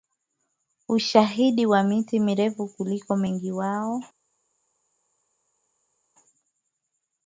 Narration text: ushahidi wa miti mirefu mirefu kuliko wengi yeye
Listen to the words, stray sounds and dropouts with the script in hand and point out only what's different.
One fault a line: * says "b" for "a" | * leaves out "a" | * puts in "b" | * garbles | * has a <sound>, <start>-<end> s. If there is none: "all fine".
* leaves out "mirefu"
* says "wao" for "yeye"